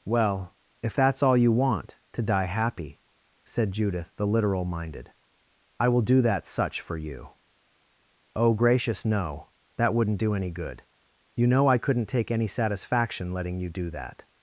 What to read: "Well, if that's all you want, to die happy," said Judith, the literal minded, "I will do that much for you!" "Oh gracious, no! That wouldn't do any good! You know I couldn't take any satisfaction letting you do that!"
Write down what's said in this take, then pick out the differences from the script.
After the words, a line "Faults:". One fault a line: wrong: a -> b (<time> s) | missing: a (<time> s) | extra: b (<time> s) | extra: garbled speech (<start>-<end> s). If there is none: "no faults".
"Well, if that's all you want, to die happy," said Judith, the literal minded, "I will do that such for you!" "Oh gracious, no! That wouldn't do any good! You know I couldn't take any satisfaction letting you do that!"
Faults:
wrong: much -> such (6.4 s)